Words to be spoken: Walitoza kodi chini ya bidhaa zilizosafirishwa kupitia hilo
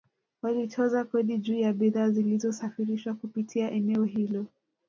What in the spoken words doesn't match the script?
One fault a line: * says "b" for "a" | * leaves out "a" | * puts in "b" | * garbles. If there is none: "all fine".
* says "juu" for "chini"
* puts in "eneo"